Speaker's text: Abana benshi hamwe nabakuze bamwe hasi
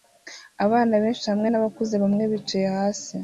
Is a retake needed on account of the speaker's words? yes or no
yes